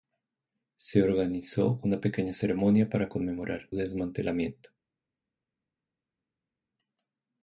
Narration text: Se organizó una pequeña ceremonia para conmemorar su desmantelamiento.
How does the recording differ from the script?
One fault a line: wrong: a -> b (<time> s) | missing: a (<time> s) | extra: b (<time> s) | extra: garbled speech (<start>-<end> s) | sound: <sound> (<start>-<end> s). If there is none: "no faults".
missing: su (3.7 s)